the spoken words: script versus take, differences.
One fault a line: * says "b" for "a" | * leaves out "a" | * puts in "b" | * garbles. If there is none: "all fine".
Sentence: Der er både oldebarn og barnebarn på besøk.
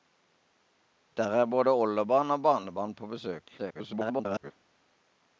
* garbles